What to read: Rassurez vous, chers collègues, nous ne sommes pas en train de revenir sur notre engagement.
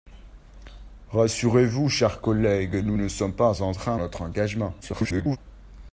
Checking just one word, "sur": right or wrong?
wrong